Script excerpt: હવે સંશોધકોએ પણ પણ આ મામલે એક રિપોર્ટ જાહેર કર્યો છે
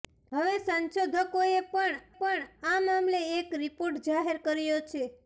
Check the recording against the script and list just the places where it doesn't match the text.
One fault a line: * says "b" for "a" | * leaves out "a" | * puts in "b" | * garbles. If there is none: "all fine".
all fine